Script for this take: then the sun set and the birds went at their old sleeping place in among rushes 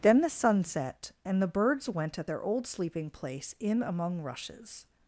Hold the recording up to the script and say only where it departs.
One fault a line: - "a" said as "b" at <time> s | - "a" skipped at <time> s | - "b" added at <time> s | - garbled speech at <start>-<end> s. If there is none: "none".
none